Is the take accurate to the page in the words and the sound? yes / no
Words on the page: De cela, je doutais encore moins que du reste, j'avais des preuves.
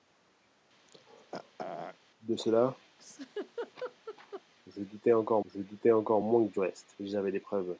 no